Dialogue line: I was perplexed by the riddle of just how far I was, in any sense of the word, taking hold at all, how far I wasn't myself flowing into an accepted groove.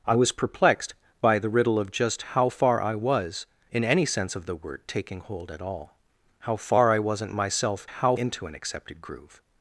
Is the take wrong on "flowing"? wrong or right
wrong